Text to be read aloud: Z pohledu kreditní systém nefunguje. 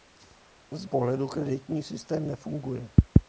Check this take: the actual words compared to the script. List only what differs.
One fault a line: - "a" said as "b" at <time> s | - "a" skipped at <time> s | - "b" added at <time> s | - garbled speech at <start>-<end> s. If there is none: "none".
none